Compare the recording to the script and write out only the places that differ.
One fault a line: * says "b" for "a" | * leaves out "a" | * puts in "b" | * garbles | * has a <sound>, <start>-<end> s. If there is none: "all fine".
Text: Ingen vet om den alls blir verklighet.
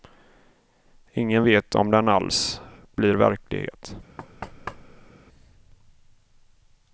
* has a thud, 4.2-5.1 s